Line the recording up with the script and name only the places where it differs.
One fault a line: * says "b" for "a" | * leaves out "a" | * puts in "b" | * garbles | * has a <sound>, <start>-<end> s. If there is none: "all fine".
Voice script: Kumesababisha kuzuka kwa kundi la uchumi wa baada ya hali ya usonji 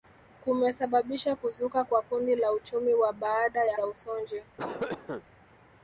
* leaves out "hali"
* has a cough, 4.6-5.2 s